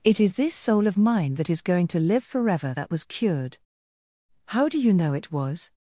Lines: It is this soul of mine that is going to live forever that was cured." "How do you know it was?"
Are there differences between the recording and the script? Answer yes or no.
no